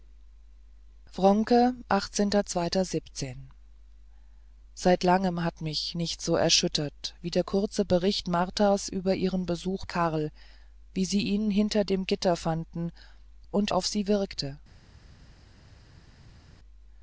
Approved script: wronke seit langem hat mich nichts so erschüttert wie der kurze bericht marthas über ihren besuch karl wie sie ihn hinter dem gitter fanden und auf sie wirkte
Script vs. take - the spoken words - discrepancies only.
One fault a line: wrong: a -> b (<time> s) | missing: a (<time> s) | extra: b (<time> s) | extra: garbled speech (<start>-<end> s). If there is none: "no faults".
no faults